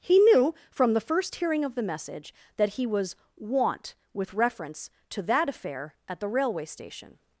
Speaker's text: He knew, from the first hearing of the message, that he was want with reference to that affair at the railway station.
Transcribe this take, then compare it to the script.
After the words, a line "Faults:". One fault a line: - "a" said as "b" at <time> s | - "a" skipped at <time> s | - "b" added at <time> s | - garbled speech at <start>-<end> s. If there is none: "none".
He knew, from the first hearing of the message, that he was want with reference to that affair at the railway station.
Faults:
none